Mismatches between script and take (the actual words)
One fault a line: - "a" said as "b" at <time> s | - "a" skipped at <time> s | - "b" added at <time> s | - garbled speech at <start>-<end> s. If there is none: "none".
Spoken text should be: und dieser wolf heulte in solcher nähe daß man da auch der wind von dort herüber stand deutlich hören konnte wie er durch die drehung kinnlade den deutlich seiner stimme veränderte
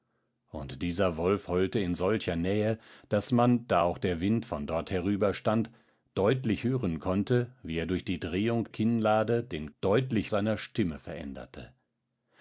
none